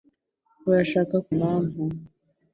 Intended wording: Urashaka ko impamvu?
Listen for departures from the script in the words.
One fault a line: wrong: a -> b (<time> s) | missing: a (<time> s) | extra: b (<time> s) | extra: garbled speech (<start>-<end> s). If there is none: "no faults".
no faults